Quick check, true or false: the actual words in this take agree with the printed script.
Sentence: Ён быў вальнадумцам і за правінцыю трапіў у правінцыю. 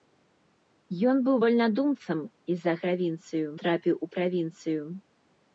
true